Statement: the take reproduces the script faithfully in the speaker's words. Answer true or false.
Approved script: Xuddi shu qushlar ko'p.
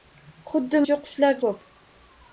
true